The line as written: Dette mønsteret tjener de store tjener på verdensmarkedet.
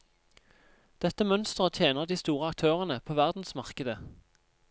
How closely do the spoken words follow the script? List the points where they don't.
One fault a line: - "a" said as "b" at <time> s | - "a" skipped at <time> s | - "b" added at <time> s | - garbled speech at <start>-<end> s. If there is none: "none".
- "tjener" said as "aktørene" at 2.5 s